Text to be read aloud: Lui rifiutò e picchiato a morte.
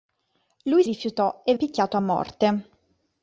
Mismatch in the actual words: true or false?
false